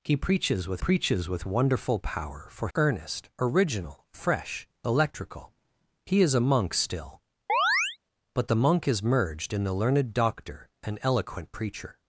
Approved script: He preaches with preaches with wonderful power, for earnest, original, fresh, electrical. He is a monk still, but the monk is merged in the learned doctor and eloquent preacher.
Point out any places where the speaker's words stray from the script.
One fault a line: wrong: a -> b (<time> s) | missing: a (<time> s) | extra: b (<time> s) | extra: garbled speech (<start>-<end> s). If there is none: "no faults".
no faults